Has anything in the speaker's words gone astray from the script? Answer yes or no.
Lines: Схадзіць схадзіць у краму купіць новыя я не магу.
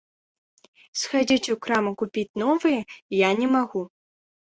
yes